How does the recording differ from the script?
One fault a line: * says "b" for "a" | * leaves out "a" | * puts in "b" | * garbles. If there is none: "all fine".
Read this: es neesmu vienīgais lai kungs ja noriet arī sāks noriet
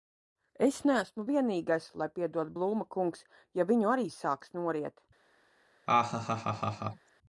* puts in "piedod blūma"
* says "viņu" for "noriet"